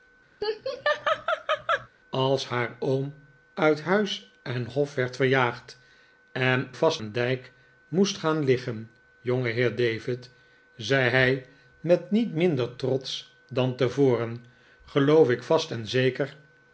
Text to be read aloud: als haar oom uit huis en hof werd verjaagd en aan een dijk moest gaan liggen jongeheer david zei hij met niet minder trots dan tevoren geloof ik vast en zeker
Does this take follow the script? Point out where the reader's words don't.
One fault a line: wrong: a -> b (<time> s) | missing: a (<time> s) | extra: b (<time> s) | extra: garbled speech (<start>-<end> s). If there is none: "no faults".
wrong: aan -> vast (6.7 s)